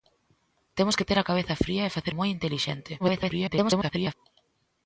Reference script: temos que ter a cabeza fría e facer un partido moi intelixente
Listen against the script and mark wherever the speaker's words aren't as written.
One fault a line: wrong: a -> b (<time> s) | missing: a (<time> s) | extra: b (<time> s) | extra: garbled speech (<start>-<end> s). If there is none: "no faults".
missing: un partido (2.1 s)
extra: garbled speech (3.0-4.1 s)